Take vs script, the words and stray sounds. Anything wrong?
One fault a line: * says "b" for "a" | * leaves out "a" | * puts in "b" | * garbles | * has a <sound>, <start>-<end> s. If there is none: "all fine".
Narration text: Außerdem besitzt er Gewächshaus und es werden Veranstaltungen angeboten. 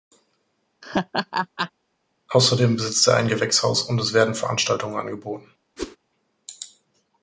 * has a laugh, 0.8-1.7 s
* puts in "ein"
* has a whoosh, 5.8-6.0 s